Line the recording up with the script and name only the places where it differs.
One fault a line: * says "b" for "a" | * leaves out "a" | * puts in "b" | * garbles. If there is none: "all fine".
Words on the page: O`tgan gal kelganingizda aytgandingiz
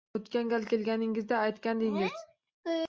all fine